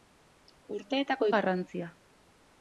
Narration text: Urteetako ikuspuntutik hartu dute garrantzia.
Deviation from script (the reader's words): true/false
true